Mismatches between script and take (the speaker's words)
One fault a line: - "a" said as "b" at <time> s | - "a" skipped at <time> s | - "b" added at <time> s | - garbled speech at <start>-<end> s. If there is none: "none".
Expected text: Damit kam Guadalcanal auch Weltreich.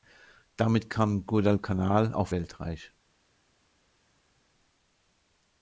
none